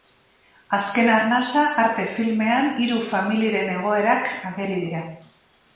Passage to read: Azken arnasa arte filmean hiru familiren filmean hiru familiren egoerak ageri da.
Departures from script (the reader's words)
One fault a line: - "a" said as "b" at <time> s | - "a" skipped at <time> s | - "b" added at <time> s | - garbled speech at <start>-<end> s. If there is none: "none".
- "filmean hiru familiren" skipped at 3.8 s
- "da" said as "dira" at 4.9 s